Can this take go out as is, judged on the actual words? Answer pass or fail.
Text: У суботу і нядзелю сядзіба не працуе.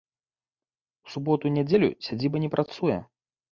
pass